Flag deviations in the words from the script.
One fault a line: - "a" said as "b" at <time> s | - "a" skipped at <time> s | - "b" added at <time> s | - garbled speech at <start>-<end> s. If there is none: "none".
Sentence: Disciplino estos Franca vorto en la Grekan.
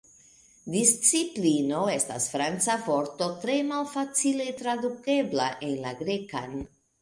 - "estos" said as "estas" at 2.0 s
- "tre malfacile tradukebla" added at 3.5 s